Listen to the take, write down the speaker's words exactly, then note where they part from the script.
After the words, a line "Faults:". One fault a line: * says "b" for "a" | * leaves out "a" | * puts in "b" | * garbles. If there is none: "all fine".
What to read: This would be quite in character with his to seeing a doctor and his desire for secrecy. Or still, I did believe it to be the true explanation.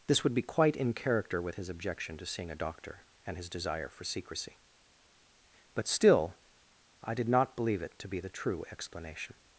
This would be quite in character with his objection to seeing a doctor and his desire for secrecy. But still, I did not believe it to be the true explanation.
Faults:
* puts in "objection"
* says "But" for "Or"
* puts in "not"